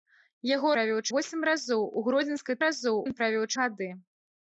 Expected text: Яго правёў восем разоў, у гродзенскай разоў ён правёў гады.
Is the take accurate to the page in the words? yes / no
yes